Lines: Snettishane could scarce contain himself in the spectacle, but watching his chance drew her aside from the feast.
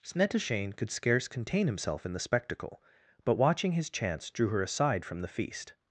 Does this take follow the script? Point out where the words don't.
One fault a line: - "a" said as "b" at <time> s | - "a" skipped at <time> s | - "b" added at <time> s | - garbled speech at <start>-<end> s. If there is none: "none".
none